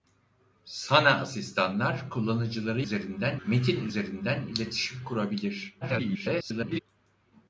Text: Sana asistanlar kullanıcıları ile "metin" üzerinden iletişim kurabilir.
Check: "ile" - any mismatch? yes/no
yes